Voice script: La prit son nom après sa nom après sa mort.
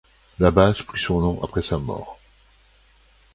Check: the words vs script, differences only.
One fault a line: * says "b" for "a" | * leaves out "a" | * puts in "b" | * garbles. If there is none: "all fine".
* puts in "base"
* leaves out "nom après sa"